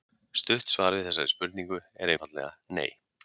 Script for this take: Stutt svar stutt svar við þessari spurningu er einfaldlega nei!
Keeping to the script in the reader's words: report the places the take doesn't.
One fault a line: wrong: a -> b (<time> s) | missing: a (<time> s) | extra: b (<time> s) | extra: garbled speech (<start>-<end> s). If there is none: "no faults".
missing: stutt svar (0.9 s)